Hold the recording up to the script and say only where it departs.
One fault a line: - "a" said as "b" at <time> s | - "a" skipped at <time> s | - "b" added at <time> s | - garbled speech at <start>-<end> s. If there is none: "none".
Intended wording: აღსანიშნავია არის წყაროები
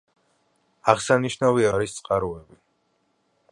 none